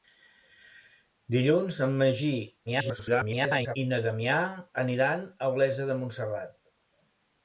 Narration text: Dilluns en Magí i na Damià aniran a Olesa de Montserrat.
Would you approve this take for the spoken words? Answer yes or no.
no